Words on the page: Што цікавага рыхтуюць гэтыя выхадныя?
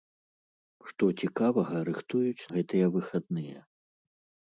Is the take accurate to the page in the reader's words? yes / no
yes